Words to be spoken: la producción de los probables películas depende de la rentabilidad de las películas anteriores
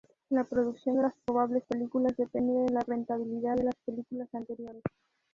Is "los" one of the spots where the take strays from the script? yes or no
yes